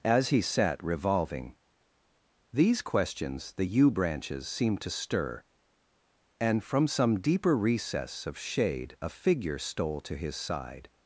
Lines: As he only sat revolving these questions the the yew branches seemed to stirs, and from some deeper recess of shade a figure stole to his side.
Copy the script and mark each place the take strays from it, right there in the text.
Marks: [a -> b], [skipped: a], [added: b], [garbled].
As he [skipped: only] sat revolving these questions the [skipped: the] yew branches seemed to [stirs, -> stir] and from some deeper recess of shade a figure stole to his side.